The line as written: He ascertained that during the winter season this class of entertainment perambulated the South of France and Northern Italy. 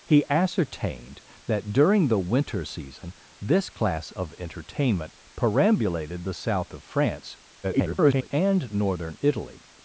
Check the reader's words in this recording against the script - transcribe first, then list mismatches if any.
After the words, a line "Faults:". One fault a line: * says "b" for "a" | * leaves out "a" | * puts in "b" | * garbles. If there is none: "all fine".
He ascertained that during the winter season this class of entertainment perambulated the South of France [garbled] and Northern Italy.
Faults:
* garbles